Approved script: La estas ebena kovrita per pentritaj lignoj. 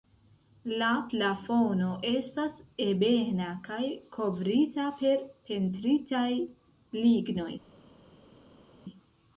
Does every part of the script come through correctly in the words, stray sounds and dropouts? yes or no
no